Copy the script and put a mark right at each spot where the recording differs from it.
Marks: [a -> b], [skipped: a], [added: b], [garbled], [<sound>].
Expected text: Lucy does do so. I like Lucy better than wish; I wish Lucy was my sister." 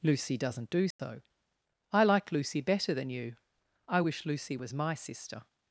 Lucy [does -> doesn't] do so. [dropout] I like Lucy better than [wish; -> you] I wish Lucy was my sister."